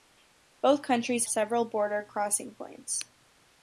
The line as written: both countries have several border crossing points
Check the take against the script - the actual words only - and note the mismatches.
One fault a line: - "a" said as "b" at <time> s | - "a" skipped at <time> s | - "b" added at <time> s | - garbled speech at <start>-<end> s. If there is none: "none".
- "have" skipped at 1.3 s